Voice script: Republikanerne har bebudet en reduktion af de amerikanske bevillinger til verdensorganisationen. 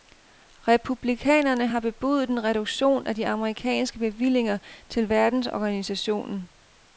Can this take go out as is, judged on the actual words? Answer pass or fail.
pass